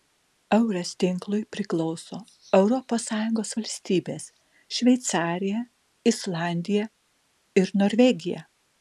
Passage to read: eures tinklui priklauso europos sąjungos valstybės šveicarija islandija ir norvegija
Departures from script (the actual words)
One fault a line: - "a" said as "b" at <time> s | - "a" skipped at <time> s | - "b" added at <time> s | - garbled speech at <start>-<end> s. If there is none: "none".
none